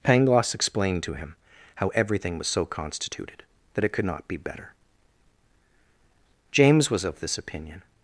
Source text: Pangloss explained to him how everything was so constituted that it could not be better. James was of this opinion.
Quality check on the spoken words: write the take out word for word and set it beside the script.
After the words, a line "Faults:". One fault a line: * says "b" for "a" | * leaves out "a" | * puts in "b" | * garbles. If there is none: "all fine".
Pangloss explained to him how everything was so constituted that it could not be better. James was of this opinion.
Faults:
all fine